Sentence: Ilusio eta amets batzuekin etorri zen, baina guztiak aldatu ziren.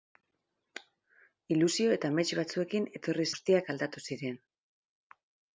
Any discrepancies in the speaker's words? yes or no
yes